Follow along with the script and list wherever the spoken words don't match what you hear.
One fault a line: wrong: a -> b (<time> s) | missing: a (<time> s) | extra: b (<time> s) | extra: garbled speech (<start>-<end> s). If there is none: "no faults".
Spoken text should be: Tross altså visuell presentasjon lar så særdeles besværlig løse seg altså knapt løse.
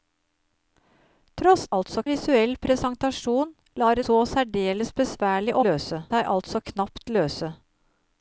no faults